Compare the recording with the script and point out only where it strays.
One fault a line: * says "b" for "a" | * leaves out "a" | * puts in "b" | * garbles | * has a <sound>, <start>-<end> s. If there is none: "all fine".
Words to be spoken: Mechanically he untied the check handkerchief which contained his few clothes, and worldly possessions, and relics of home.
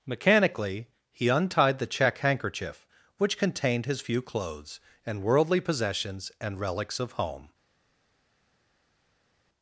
all fine